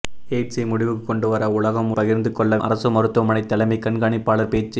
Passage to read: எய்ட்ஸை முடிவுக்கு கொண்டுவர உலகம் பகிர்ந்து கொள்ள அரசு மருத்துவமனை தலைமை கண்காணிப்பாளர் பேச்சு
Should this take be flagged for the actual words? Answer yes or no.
no